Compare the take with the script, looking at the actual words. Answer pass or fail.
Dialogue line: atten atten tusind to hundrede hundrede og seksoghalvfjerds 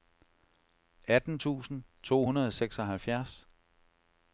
fail